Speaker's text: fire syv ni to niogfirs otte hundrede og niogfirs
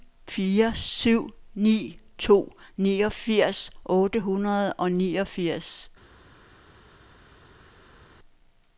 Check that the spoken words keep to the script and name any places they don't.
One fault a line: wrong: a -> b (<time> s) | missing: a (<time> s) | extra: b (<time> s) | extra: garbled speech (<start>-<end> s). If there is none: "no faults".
no faults